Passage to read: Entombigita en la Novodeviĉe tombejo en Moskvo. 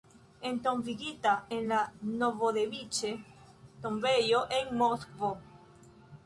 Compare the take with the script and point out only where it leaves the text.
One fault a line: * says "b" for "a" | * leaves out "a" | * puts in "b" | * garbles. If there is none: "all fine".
all fine